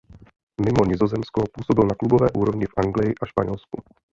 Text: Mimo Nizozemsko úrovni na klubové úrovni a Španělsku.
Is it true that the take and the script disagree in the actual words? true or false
true